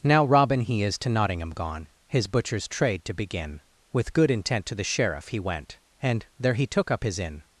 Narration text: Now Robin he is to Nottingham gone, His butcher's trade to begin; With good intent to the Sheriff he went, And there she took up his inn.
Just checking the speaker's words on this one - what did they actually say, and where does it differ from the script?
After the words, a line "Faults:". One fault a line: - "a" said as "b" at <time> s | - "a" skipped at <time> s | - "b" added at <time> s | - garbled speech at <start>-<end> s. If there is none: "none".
Now Robin he is to Nottingham gone, His butcher's trade to begin; With good intent to the Sheriff he went, And there he took up his inn.
Faults:
- "she" said as "he" at 6.5 s